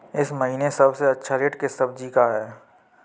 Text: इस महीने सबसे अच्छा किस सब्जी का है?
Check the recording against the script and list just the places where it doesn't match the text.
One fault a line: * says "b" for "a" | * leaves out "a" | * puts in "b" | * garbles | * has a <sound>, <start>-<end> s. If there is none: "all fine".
* puts in "रेट"